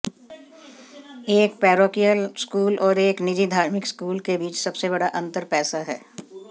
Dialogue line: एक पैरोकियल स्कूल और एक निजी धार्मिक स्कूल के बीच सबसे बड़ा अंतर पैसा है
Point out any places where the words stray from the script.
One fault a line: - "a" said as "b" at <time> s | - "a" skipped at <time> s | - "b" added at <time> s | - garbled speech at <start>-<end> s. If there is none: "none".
none